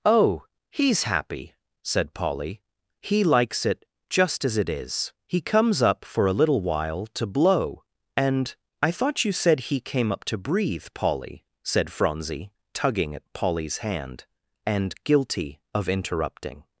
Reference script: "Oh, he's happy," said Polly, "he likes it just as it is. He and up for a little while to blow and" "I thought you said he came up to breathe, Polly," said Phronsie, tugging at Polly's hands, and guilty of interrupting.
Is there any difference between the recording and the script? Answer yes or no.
yes